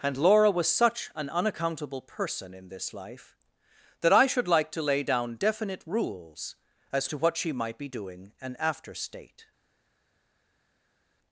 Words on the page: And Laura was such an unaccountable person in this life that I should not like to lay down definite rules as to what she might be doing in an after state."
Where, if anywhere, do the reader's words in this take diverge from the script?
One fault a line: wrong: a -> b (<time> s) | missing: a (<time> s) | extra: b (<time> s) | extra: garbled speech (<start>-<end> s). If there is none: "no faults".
missing: not (4.5 s)
missing: in (8.3 s)